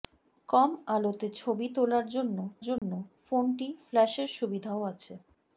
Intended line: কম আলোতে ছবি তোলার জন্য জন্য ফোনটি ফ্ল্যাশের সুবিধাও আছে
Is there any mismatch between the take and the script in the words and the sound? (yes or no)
yes